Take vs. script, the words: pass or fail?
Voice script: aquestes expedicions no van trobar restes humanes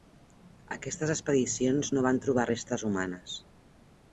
pass